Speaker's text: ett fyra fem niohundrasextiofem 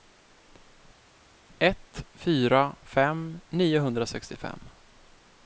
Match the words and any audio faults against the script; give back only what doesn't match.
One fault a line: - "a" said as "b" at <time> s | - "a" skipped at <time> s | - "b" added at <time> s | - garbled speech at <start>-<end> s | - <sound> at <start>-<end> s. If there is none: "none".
none